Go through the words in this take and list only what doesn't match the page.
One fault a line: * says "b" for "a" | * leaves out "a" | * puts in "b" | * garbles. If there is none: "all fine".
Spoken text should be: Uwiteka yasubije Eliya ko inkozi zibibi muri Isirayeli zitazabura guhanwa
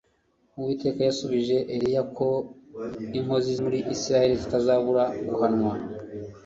* leaves out "zibibi"